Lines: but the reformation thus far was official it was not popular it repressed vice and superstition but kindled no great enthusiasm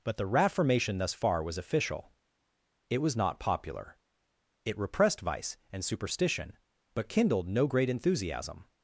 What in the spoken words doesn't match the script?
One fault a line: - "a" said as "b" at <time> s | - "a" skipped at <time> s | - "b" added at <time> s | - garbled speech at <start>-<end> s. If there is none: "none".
none